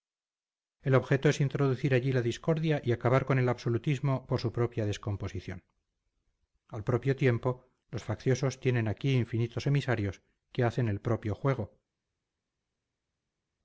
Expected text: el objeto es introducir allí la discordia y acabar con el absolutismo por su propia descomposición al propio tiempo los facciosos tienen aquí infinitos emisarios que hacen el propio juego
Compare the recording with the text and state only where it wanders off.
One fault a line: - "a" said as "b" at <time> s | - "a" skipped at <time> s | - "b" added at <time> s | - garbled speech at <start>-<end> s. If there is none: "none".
none